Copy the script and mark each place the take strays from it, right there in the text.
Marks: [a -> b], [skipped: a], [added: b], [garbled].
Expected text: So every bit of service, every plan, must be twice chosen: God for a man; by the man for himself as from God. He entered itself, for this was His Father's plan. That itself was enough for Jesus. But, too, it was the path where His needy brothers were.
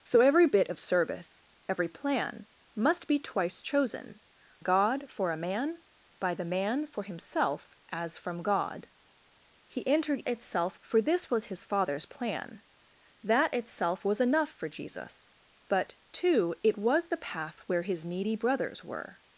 So every bit of service, every plan, must be twice chosen: God for a man; by the man for himself as from God. He entered itself, for this was His Father's plan. That itself was enough for Jesus. But, too, it was the path where His needy brothers were.